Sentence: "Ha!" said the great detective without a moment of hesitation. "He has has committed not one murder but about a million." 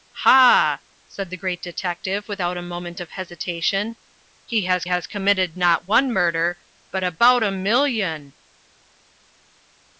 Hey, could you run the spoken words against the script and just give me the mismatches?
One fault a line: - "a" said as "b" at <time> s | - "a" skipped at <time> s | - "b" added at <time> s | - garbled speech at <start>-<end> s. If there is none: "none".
none